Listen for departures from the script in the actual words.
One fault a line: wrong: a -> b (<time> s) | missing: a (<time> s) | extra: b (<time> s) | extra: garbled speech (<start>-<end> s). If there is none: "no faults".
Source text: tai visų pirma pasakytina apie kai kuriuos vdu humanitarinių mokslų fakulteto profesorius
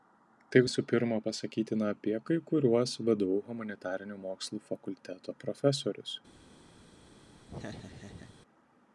no faults